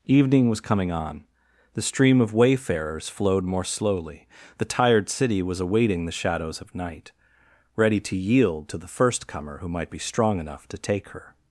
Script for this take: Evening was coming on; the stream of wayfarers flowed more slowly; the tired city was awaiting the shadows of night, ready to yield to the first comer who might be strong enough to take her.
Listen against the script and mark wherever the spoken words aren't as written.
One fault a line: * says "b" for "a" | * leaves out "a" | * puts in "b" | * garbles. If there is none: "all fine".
all fine